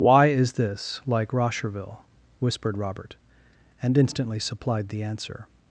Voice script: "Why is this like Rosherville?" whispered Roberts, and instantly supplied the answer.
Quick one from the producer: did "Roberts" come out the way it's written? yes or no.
no